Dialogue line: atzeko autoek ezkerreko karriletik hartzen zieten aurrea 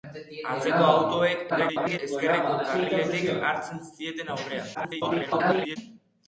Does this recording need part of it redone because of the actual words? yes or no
yes